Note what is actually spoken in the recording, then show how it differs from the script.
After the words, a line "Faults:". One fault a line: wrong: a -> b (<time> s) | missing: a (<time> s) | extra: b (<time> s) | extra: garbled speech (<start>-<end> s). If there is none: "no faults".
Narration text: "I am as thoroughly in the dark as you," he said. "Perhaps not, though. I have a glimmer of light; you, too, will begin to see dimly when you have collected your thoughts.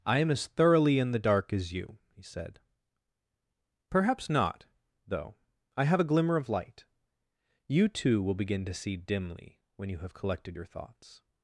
"I am as thoroughly in the dark as you," he said. "Perhaps not, though. I have a glimmer of light; you, too, will begin to see dimly when you have collected your thoughts.
Faults:
no faults